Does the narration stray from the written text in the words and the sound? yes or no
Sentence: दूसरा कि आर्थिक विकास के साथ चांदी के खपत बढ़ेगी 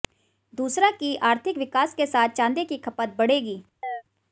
yes